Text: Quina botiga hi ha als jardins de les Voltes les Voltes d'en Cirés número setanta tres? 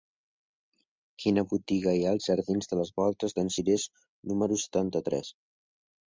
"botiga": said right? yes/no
yes